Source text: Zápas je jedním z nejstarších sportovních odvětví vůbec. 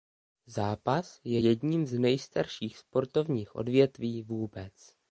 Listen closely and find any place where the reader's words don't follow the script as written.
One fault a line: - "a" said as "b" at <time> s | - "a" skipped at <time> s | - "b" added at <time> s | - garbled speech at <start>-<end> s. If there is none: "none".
none